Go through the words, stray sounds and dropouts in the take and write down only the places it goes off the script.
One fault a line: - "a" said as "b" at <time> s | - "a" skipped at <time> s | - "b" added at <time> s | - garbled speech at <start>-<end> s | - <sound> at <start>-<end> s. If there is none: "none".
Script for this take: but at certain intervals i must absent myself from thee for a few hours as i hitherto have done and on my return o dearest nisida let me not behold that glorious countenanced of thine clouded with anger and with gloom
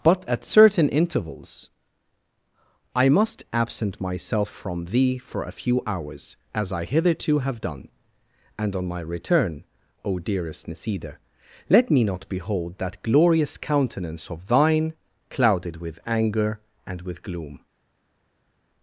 - "countenanced" said as "countenance" at 13.6 s